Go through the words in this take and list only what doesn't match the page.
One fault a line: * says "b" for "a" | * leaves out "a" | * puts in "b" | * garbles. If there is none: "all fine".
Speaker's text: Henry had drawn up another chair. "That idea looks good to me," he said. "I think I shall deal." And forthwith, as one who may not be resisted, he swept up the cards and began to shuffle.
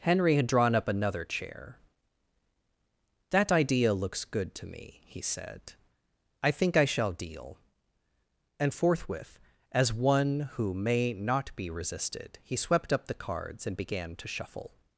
all fine